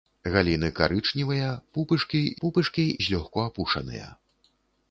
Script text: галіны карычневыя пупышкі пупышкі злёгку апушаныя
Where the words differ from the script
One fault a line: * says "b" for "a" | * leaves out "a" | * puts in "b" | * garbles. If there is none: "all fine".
all fine